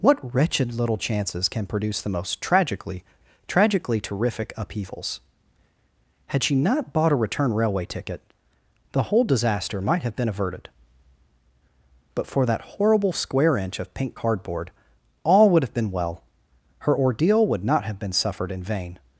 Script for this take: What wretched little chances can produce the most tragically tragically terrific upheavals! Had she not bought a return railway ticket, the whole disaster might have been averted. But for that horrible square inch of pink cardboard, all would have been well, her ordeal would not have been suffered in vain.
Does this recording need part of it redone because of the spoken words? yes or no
no